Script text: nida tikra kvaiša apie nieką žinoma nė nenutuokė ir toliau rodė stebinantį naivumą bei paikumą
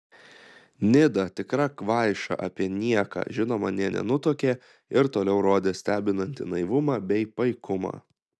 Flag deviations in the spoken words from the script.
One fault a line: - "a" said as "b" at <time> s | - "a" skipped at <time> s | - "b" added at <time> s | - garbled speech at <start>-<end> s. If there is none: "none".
none